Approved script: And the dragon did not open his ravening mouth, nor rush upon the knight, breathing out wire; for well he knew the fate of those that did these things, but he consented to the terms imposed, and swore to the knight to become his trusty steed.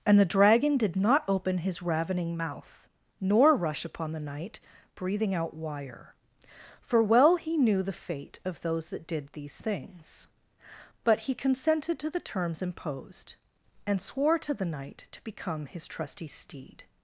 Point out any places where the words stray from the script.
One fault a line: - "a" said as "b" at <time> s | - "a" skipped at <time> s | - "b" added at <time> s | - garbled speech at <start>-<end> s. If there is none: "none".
none